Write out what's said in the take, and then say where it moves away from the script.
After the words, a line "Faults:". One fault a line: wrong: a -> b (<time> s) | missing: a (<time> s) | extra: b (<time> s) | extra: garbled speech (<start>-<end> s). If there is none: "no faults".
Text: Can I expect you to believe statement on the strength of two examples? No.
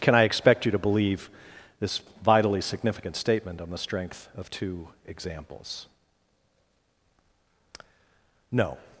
Can I expect you to believe this vitally significant statement on the strength of two examples? No.
Faults:
extra: this vitally significant (1.8 s)